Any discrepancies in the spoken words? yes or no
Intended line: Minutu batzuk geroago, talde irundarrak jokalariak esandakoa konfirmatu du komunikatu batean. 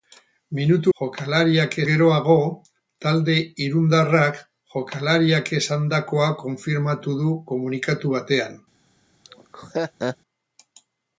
yes